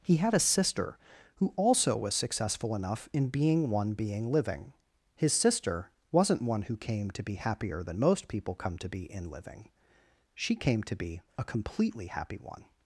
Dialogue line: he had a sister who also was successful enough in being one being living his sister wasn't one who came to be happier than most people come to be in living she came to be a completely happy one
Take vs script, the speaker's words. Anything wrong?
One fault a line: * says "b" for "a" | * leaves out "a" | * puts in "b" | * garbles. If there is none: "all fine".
all fine